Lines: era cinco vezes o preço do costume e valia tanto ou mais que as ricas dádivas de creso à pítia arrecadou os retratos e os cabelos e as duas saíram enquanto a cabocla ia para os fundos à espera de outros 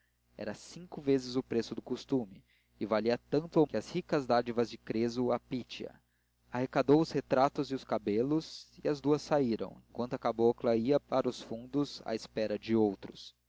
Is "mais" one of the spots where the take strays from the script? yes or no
yes